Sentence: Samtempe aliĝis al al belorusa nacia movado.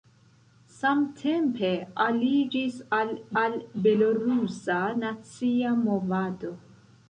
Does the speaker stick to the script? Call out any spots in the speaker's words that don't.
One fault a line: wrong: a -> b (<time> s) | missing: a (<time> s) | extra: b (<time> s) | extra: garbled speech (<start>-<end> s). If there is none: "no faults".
no faults